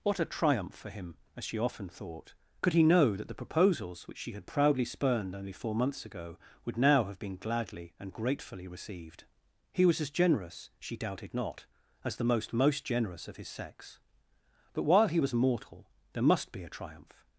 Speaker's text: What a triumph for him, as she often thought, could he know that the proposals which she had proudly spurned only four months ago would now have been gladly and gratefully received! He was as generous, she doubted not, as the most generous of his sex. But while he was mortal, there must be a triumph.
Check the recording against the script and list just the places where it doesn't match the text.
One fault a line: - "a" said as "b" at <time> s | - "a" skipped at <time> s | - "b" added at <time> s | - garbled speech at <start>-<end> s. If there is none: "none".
- "most" added at 12.5 s